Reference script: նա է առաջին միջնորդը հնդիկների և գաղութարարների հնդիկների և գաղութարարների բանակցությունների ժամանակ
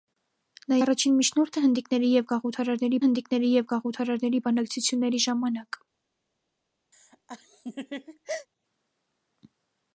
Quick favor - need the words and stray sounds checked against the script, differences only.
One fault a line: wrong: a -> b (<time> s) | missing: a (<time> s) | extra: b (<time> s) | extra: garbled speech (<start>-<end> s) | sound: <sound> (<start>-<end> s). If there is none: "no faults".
sound: laugh (6.9-8.5 s)